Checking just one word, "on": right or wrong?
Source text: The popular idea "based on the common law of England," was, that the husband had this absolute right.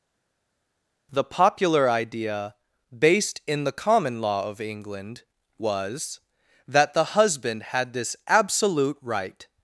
wrong